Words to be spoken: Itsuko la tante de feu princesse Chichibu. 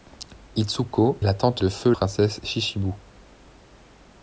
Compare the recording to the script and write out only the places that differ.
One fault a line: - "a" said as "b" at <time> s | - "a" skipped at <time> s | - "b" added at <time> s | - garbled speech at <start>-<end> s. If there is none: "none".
none